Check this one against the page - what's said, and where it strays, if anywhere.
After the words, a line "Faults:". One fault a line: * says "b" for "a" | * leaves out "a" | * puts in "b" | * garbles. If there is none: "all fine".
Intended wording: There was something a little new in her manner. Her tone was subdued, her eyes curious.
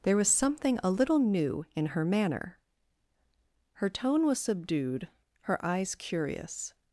There was something a little new in her manner. Her tone was subdued, her eyes curious.
Faults:
all fine